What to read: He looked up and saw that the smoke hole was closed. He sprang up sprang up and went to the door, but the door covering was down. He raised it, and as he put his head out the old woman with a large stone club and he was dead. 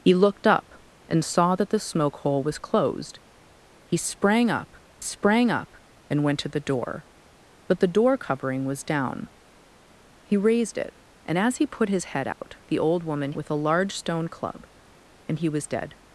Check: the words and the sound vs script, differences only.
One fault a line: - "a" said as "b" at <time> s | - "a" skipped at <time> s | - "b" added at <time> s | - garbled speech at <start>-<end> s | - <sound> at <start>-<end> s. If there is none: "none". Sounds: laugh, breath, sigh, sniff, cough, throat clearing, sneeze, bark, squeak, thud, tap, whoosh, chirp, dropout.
- dropout at 12.3-12.4 s